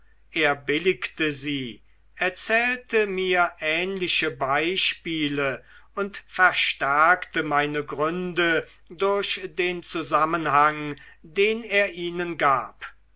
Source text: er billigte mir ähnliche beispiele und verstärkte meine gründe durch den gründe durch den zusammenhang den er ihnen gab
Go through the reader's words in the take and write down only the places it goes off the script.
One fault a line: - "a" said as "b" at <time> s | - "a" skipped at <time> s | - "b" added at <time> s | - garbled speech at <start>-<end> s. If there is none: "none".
- "sie erzählte" added at 1.3 s
- "gründe durch den" skipped at 9.8 s